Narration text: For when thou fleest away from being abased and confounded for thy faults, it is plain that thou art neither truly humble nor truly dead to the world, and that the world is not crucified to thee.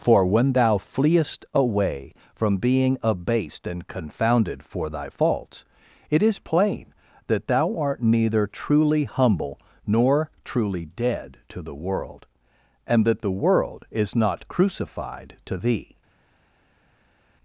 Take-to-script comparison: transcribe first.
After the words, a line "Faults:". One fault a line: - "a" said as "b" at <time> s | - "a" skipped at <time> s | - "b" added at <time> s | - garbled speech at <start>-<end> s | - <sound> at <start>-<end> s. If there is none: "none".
For when thou fleest away from being abased and confounded for thy faults, it is plain that thou art neither truly humble nor truly dead to the world, and that the world is not crucified to thee.
Faults:
none